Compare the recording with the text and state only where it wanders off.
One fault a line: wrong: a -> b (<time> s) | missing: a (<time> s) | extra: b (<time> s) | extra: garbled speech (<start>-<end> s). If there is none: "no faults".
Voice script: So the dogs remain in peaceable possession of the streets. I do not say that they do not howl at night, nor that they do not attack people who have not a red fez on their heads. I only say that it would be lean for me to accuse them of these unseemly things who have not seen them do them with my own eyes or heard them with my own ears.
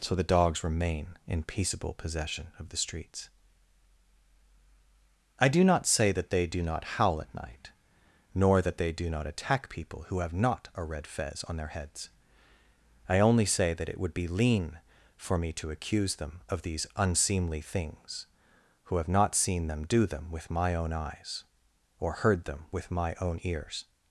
no faults